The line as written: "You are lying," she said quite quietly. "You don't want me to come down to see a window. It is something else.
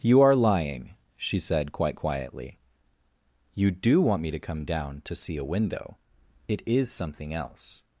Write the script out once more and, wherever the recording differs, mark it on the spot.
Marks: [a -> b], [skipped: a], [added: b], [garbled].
"You are lying," she said quite quietly. "You [don't -> do] want me to come down to see a window. It is something else.